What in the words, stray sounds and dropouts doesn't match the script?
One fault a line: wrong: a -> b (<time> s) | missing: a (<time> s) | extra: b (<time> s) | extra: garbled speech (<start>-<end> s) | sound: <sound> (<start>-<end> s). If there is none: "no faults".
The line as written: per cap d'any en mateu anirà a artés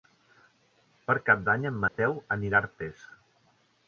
sound: dropout (1.9-2.0 s)